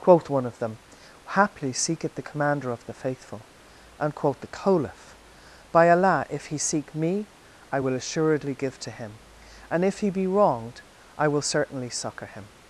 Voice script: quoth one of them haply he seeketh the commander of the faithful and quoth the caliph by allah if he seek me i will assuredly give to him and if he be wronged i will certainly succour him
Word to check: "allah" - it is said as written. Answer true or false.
true